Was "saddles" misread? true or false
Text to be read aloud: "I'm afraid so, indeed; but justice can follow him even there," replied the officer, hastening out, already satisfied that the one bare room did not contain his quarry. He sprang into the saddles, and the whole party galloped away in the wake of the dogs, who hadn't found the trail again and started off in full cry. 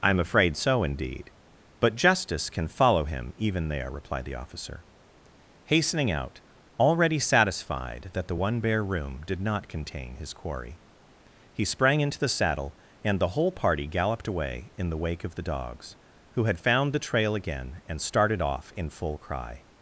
true